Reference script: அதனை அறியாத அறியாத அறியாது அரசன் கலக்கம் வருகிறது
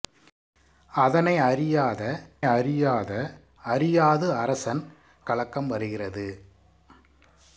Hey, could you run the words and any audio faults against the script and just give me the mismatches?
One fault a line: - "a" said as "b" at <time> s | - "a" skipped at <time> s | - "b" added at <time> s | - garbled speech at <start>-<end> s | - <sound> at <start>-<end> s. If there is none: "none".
none